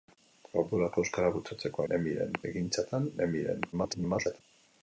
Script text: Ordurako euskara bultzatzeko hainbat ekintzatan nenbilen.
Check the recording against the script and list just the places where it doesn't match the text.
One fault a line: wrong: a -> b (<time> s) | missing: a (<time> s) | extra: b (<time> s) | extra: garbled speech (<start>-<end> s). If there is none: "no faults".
wrong: hainbat -> nenbilen (1.9 s)
extra: garbled speech (3.7-4.4 s)